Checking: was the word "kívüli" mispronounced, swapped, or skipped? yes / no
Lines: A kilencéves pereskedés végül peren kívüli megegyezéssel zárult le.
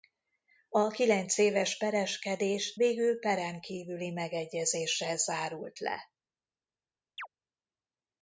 no